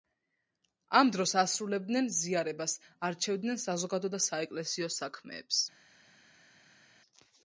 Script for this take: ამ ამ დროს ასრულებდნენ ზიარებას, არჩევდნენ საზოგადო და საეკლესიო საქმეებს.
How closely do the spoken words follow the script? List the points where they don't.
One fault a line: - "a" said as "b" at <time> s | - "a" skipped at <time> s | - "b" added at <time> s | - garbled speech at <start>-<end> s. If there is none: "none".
- "ამ" skipped at 1.1 s